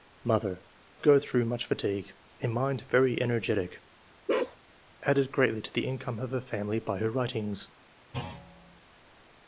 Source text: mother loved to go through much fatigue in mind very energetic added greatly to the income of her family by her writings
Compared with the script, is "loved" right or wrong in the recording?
wrong